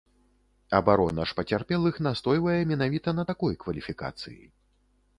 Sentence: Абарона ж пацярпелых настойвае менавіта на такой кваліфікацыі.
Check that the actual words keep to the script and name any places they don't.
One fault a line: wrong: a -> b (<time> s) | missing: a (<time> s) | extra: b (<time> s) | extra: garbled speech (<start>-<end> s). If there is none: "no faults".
no faults